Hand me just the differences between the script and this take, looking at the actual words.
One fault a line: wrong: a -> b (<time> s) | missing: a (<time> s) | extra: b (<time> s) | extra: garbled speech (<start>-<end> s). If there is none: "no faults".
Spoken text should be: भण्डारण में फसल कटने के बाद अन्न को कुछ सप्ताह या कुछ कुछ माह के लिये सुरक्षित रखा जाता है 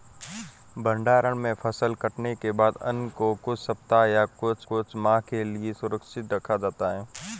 no faults